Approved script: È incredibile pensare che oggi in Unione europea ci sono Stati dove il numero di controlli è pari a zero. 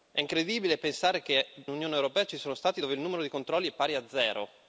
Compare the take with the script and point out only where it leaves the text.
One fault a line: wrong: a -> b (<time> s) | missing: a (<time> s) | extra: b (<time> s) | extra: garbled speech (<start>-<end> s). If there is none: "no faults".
missing: oggi in (1.4 s)